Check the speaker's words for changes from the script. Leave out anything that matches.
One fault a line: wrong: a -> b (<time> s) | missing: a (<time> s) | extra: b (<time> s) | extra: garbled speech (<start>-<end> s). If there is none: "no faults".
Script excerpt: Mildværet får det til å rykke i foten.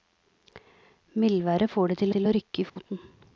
extra: til (2.1 s)